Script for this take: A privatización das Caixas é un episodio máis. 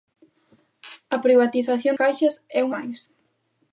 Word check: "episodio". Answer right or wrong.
wrong